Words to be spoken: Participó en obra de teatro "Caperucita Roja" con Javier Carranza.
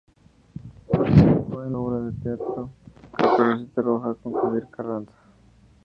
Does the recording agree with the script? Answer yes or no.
yes